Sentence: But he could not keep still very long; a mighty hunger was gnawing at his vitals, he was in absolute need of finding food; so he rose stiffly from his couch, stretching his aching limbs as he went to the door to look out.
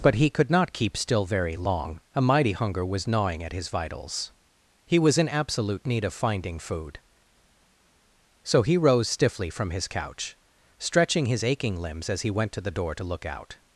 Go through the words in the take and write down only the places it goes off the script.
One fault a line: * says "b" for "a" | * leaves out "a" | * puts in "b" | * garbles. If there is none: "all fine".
all fine